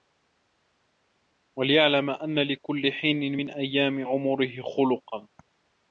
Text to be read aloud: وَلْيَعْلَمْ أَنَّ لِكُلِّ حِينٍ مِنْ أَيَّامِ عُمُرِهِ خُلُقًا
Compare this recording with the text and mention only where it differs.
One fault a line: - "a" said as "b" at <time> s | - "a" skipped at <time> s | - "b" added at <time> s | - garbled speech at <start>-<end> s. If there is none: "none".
none